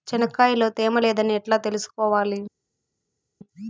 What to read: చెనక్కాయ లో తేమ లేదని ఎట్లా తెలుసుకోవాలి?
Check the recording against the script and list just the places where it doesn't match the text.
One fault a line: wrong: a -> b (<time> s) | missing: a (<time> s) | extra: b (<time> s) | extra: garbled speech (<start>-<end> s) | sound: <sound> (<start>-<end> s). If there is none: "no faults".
no faults